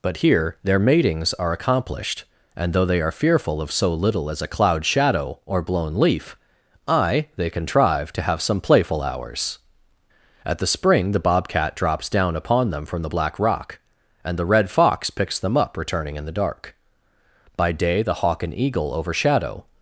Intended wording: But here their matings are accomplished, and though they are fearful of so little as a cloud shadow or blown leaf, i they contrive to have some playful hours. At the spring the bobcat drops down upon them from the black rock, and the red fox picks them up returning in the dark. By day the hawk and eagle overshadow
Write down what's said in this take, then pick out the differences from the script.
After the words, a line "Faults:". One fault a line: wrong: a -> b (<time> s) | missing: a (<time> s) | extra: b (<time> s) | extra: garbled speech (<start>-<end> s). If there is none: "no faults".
But here their matings are accomplished, and though they are fearful of so little as a cloud shadow or blown leaf, i they contrive to have some playful hours. At the spring the bobcat drops down upon them from the black rock, and the red fox picks them up returning in the dark. By day the hawk and eagle overshadow
Faults:
no faults